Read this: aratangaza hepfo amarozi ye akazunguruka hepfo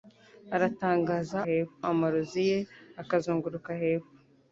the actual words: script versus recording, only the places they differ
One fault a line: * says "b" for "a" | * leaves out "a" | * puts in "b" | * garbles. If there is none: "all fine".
all fine